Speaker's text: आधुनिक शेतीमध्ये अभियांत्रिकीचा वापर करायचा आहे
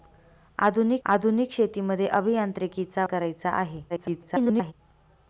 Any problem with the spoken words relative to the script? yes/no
yes